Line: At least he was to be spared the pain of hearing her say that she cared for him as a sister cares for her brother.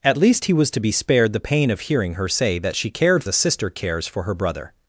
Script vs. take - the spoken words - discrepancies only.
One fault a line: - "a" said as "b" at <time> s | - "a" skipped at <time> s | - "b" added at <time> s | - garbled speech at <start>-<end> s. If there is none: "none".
- "for him as" skipped at 3.2 s